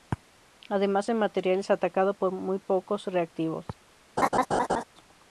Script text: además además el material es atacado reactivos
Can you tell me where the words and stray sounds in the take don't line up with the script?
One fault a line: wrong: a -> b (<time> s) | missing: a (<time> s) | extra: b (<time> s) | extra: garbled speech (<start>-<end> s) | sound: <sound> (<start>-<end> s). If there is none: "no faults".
missing: además (1.1 s)
extra: por muy pocos (2.2 s)
sound: laugh (4.2-4.8 s)